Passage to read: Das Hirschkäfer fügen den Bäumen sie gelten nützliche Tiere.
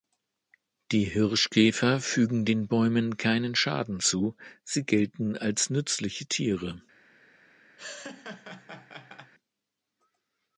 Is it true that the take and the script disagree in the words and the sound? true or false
true